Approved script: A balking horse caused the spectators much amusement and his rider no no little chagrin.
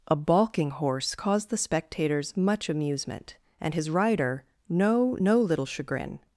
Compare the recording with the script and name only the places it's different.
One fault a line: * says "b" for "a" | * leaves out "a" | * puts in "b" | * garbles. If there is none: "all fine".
all fine